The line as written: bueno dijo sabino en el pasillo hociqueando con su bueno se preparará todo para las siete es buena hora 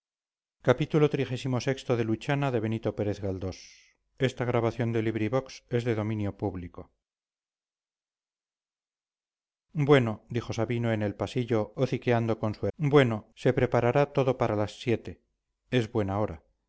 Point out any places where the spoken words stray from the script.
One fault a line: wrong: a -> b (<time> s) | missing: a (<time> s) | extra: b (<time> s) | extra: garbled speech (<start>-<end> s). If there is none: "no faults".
no faults